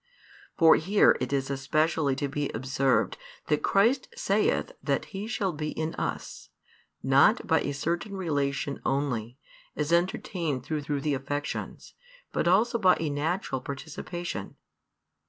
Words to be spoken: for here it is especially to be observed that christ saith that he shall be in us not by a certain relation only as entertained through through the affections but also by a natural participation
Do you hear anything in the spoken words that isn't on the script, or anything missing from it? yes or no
no